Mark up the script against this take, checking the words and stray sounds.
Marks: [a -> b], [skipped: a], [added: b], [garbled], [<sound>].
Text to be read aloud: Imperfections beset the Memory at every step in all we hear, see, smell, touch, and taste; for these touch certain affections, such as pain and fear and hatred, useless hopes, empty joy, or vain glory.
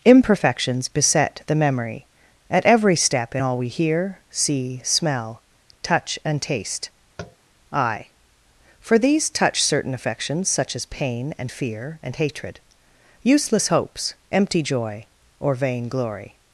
Imperfections beset the Memory at every step in all we hear, see, smell, touch, and taste; [tap] [added: I] for these touch certain affections, such as pain and fear and hatred, useless hopes, empty joy, or vain glory.